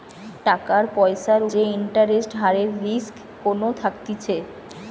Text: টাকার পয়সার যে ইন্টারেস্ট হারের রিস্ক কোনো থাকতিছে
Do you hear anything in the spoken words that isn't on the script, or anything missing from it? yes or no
no